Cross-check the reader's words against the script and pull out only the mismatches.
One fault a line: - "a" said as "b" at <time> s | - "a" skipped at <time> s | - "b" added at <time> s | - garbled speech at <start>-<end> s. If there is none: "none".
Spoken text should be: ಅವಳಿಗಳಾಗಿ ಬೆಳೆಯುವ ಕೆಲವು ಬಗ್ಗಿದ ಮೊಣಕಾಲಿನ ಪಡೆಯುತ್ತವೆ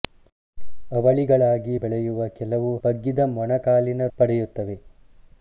none